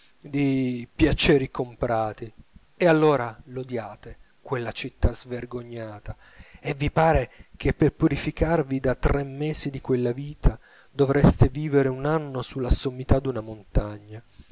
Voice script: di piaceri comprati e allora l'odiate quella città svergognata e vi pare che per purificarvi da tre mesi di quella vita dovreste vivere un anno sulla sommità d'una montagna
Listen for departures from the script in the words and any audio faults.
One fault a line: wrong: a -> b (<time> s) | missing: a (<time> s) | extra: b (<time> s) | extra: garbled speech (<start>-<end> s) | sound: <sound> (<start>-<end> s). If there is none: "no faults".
no faults